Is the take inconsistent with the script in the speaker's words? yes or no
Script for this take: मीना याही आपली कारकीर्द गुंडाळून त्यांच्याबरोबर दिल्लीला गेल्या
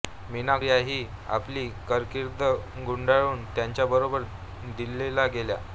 no